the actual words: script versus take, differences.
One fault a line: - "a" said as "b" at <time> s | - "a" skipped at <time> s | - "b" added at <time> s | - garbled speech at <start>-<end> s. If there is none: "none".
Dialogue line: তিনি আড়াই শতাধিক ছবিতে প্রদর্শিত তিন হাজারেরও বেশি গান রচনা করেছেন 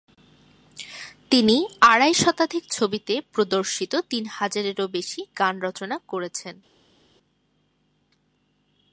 none